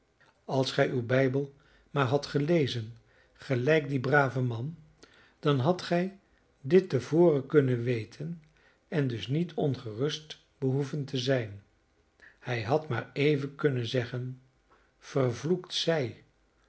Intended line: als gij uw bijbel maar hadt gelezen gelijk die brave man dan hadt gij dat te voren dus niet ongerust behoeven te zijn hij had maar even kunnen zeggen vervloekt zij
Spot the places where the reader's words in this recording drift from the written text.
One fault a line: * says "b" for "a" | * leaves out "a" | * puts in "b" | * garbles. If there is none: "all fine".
* says "dit" for "dat"
* puts in "kunnen weten en"